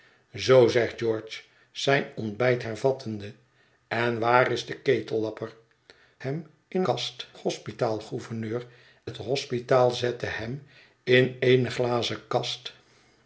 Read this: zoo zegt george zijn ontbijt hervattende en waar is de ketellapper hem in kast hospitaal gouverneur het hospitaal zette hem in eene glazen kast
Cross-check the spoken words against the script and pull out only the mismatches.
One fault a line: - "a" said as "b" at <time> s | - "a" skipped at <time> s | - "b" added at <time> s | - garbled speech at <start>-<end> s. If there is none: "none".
none